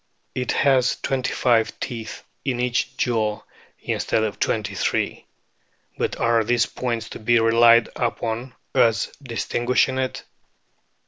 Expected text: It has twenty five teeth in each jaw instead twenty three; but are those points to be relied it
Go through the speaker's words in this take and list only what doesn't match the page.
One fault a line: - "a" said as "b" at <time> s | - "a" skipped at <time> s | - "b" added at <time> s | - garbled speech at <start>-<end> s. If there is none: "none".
- "of" added at 4.2 s
- "those" said as "these" at 6.4 s
- "upon as distinguishing" added at 8.0 s